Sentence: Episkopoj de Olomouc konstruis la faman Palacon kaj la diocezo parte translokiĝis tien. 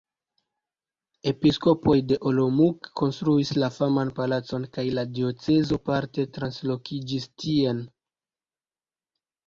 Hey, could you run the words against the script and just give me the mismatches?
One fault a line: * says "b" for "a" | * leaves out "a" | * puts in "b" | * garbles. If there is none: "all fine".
all fine